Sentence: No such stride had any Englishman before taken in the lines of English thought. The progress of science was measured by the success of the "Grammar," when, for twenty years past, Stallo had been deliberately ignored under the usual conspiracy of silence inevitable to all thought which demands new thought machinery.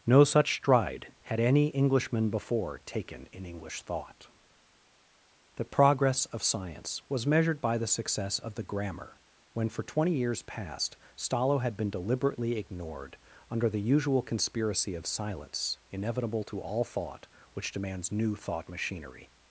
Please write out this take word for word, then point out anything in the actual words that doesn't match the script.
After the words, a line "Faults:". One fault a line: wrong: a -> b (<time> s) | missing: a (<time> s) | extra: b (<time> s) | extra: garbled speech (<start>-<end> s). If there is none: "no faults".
No such stride had any Englishman before taken in English thought. The progress of science was measured by the success of the "Grammar," when, for twenty years past, Stallo had been deliberately ignored under the usual conspiracy of silence inevitable to all thought which demands new thought machinery.
Faults:
missing: the lines of (3.5 s)